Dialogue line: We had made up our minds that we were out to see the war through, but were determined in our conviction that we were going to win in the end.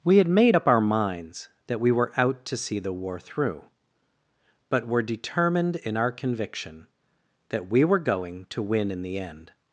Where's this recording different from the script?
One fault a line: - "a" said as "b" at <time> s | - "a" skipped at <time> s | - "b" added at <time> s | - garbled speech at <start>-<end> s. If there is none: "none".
none